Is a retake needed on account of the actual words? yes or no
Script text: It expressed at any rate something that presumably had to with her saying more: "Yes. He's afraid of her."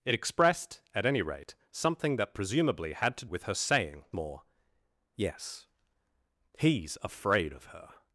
no